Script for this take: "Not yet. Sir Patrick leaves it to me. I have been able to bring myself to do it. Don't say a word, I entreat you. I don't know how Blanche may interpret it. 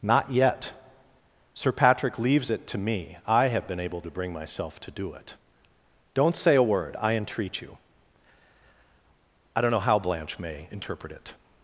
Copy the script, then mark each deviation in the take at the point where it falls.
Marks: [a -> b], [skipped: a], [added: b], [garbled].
"Not yet. Sir Patrick leaves it to me. I have been able to bring myself to do it. Don't say a word, I entreat you. I don't know how Blanche may interpret it.